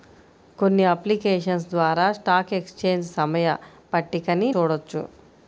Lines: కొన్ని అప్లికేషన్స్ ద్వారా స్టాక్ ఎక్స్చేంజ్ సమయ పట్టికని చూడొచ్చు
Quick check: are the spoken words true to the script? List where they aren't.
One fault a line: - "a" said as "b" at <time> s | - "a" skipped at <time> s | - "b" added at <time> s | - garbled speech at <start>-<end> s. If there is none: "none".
none